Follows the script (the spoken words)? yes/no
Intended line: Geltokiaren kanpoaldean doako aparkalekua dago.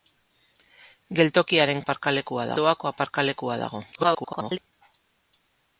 no